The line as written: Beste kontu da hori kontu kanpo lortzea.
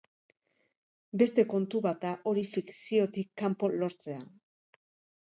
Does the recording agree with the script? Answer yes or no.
no